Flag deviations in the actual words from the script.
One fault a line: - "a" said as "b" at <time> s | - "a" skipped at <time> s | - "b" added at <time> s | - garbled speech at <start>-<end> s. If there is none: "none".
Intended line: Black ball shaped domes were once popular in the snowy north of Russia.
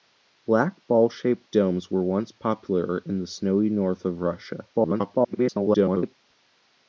- garbled speech at 4.7-6.2 s